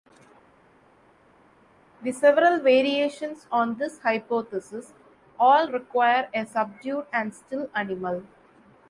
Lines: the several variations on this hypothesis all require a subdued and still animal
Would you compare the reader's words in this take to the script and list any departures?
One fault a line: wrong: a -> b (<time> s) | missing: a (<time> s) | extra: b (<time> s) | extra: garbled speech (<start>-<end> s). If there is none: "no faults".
no faults